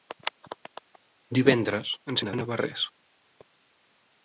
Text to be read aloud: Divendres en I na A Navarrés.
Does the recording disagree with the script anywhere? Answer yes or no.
no